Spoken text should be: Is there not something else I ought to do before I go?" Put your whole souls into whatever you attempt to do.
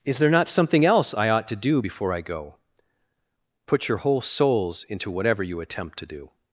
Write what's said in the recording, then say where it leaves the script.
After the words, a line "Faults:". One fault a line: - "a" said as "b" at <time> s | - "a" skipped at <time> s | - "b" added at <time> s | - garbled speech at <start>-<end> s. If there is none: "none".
Is there not something else I ought to do before I go?" Put your whole souls into whatever you attempt to do.
Faults:
none